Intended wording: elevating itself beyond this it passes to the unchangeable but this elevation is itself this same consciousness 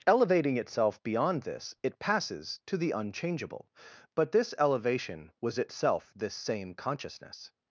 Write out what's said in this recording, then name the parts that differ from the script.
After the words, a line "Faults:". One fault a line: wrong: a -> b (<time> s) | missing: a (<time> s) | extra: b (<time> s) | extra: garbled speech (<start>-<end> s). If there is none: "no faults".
elevating itself beyond this it passes to the unchangeable but this elevation was itself this same consciousness
Faults:
wrong: is -> was (5.4 s)